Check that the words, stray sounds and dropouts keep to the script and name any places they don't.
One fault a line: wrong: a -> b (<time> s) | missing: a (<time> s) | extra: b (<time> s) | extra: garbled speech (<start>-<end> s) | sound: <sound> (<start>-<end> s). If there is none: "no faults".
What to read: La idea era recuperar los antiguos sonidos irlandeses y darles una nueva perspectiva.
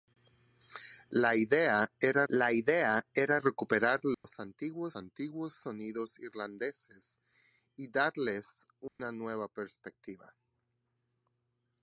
extra: la idea era (2.3 s)
sound: dropout (4.1-4.2 s)
extra: antiguos (5.0 s)
sound: dropout (8.9-9.0 s)